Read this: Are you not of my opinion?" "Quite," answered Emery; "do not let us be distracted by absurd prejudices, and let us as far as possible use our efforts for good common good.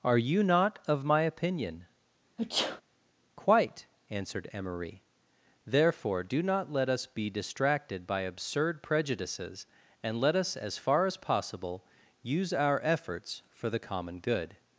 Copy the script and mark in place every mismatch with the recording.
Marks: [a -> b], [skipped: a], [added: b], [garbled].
Are you not of my opinion?" "Quite," answered Emery; [added: therefore] "do not let us be distracted by absurd prejudices, and let us as far as possible use our efforts for [good -> the] common good.